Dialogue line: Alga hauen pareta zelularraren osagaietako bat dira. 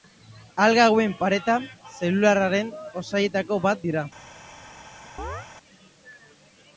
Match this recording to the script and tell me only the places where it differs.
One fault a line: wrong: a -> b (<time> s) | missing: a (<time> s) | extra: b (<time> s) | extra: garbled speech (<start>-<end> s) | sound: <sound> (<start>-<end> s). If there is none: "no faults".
sound: chirp (5.2-5.5 s)